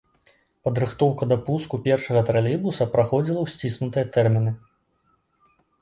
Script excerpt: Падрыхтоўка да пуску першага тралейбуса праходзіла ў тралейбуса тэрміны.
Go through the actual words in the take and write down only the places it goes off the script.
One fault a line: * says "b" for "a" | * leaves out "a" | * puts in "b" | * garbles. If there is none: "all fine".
* says "сціснутыя" for "тралейбуса"